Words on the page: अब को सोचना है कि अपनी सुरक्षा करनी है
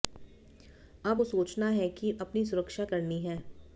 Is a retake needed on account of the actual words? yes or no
no